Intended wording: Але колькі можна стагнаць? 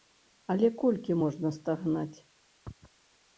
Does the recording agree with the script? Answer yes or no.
yes